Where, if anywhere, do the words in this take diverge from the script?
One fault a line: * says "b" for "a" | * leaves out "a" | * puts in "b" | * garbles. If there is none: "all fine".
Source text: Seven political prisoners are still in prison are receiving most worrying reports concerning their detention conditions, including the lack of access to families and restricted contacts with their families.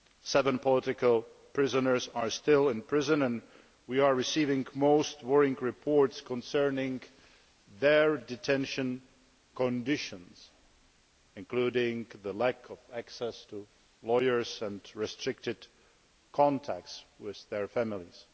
* puts in "and we"
* says "lawyers" for "families"